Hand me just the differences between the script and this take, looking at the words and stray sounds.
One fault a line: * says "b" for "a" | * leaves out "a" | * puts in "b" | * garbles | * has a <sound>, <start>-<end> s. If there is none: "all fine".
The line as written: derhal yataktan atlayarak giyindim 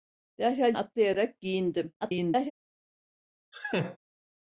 * leaves out "yataktan"
* garbles
* has a laugh, 3.5-4.0 s